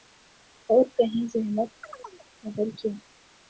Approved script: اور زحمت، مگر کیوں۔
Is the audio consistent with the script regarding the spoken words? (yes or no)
no